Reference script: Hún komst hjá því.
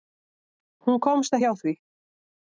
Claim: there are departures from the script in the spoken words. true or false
false